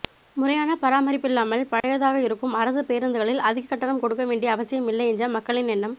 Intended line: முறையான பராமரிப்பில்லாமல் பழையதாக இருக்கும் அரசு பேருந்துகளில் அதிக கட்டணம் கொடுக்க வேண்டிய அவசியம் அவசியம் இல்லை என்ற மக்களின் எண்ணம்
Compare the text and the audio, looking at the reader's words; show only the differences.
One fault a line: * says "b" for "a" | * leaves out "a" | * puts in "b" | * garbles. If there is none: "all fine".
* leaves out "அவசியம்"